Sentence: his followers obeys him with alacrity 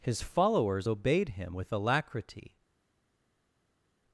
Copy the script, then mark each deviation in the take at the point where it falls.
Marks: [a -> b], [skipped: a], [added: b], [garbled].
his followers [obeys -> obeyed] him with alacrity